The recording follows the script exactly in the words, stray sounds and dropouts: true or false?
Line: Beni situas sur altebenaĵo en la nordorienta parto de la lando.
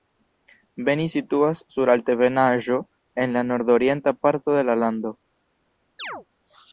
false